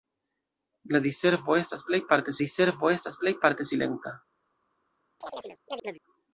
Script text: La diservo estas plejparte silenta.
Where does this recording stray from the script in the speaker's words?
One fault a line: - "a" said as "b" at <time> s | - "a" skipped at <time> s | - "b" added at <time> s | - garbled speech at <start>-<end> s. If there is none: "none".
- "diservo estas plejparte" added at 2.4 s